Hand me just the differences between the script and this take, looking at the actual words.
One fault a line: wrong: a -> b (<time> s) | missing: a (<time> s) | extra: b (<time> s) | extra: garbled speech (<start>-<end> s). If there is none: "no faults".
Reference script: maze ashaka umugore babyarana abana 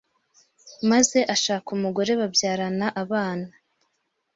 no faults